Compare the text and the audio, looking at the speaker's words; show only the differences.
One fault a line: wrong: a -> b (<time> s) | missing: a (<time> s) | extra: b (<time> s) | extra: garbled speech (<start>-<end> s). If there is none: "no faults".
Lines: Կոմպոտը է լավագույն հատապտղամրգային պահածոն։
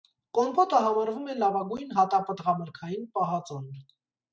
extra: համարվում (0.8 s)